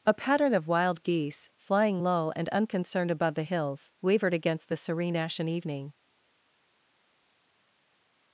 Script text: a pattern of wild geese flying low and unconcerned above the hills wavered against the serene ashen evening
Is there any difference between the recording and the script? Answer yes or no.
no